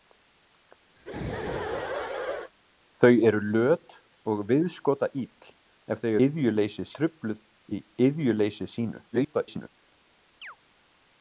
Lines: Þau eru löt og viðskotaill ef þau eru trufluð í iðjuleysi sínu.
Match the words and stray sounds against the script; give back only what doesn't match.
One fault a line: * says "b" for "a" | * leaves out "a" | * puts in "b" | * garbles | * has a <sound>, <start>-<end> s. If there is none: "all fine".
* has a laugh, 1.0-2.5 s
* says "iðjuleysi" for "eru"
* garbles
* has a chirp, 10.4-10.6 s